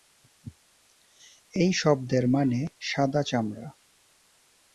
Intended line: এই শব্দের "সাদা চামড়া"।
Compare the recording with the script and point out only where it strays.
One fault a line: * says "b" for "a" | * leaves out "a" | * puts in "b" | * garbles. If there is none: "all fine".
* puts in "মানে"